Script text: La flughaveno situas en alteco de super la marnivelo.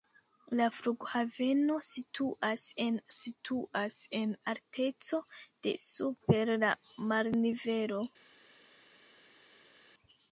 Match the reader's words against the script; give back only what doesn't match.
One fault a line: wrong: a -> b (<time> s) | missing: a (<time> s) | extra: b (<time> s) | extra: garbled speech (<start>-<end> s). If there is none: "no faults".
extra: situas en (3.2 s)